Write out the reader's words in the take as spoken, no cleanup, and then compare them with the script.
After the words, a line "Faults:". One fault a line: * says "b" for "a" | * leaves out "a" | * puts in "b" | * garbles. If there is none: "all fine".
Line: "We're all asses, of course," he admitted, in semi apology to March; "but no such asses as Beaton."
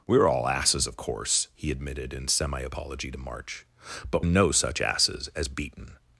"We're all asses, of course," he admitted, in semi apology to March; "but no such asses as Beaton."
Faults:
all fine